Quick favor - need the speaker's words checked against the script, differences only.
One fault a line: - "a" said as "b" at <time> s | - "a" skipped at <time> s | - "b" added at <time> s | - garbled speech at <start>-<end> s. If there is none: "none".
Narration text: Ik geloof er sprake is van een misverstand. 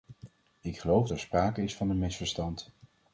none